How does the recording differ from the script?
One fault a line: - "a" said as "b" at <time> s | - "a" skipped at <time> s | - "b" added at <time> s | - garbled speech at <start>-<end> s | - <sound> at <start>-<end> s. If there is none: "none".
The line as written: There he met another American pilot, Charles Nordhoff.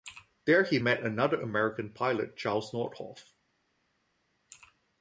none